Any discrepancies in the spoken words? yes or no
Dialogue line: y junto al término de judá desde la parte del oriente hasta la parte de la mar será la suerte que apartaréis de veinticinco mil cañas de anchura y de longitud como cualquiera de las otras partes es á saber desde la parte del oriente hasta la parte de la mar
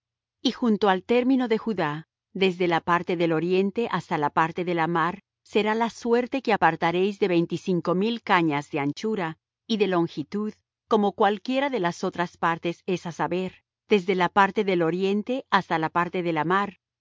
no